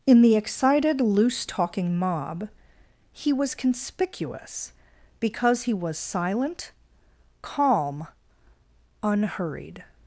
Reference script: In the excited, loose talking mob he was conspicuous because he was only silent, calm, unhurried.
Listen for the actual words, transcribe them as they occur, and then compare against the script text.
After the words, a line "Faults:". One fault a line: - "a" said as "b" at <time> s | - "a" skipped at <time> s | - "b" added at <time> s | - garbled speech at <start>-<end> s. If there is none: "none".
In the excited, loose talking mob he was conspicuous because he was silent, calm, unhurried.
Faults:
- "only" skipped at 6.0 s